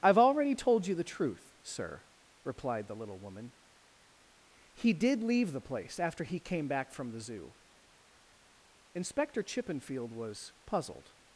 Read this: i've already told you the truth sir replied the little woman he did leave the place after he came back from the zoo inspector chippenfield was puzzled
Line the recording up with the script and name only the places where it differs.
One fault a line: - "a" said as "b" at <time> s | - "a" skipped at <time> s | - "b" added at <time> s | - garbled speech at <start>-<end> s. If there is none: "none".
none